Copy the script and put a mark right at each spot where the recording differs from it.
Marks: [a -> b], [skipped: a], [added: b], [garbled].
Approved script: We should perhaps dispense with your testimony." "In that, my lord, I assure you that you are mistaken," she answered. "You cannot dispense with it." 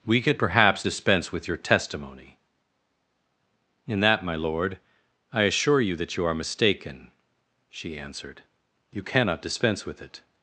We [should -> could] perhaps dispense with your testimony." "In that, my lord, I assure you that you are mistaken," she answered. "You cannot dispense with it."